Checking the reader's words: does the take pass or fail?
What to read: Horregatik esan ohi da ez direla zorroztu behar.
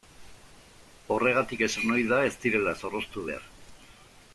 pass